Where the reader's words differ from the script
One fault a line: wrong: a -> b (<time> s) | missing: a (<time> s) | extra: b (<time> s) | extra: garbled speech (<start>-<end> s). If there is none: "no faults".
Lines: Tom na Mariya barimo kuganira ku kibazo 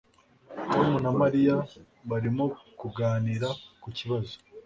no faults